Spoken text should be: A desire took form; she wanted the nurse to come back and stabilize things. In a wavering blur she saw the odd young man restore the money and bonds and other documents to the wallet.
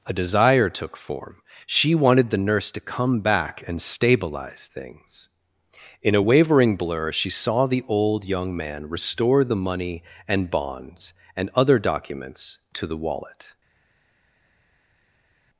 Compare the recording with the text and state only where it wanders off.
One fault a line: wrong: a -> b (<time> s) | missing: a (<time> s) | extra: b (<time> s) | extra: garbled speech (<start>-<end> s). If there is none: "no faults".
wrong: odd -> old (7.9 s)